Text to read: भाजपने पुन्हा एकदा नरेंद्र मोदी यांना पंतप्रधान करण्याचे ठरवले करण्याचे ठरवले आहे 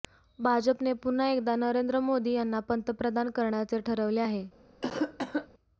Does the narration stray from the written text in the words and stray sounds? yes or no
yes